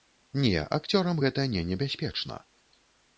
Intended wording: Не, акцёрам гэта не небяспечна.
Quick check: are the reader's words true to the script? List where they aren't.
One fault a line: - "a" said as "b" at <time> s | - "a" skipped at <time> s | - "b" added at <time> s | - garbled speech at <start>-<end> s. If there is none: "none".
none